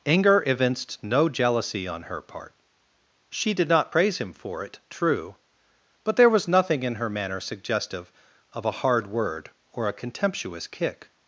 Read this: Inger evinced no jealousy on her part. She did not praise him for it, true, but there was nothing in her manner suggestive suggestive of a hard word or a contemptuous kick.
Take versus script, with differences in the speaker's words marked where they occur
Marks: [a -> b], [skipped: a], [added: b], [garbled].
Inger evinced no jealousy on her part. She did not praise him for it, true, but there was nothing in her manner suggestive [skipped: suggestive] of a hard word or a contemptuous kick.